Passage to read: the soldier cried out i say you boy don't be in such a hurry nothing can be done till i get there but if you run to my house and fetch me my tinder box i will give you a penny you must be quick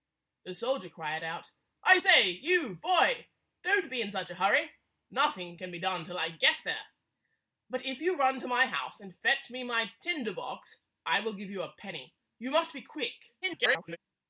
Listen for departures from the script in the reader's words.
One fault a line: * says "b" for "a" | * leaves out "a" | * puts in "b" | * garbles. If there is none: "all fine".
* garbles